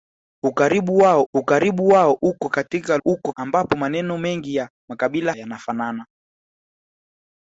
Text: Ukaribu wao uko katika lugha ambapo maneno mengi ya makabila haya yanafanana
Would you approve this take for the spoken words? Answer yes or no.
no